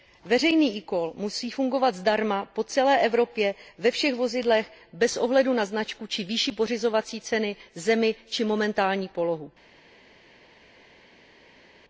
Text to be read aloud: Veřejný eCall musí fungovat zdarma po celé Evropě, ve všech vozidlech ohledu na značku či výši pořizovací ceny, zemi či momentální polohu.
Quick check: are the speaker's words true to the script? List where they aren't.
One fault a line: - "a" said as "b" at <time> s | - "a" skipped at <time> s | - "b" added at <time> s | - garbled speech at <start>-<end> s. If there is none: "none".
- "bez" added at 4.9 s